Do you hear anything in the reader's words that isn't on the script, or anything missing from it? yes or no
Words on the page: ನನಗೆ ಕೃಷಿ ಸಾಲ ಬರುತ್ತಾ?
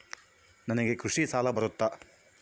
no